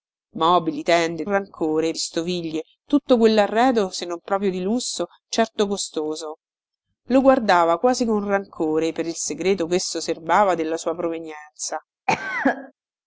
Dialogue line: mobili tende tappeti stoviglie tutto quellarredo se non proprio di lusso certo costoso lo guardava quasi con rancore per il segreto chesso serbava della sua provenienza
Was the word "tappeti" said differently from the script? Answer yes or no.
yes